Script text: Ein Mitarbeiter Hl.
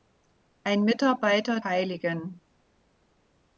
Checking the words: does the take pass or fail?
pass